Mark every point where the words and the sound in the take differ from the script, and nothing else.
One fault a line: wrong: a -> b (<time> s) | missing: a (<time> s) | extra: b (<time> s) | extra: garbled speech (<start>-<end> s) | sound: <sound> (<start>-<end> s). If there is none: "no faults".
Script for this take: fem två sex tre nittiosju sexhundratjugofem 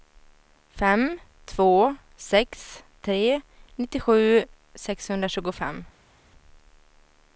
no faults